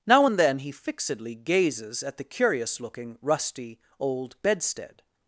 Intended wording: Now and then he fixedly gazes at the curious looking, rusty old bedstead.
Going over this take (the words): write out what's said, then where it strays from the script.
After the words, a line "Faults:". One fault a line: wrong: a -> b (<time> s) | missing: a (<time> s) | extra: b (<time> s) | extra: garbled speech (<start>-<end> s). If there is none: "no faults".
Now and then he fixedly gazes at the curious looking, rusty old bedstead.
Faults:
no faults